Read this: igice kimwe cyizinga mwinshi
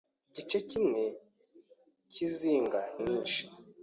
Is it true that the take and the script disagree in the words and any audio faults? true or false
false